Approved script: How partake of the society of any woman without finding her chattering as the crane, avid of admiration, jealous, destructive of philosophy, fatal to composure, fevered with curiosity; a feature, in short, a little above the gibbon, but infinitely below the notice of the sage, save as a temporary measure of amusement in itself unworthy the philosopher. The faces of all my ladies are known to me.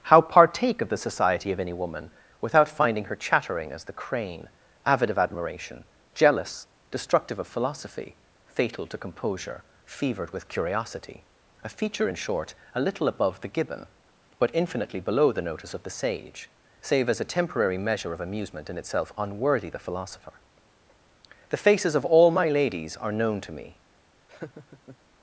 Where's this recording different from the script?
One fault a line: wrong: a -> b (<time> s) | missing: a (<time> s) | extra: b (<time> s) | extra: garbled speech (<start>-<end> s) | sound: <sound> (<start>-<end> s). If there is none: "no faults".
sound: laugh (24.3-25.0 s)